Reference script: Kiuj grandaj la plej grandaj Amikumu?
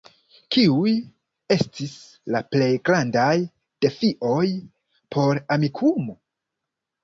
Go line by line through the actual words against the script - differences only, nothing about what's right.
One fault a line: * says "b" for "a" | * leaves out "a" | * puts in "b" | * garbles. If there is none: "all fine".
* says "estis" for "grandaj"
* puts in "defioj por"